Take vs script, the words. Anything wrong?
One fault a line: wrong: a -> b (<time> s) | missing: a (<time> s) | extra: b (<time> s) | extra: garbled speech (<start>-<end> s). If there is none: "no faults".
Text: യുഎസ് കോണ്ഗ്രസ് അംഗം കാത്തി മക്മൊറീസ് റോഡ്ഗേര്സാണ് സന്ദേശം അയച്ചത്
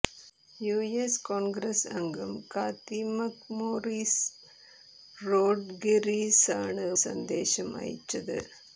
no faults